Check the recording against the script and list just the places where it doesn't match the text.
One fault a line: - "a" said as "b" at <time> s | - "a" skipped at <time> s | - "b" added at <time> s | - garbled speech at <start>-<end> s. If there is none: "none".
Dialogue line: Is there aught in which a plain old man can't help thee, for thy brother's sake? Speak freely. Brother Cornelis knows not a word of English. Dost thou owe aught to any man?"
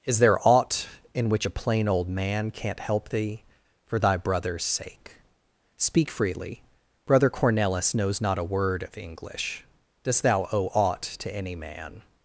none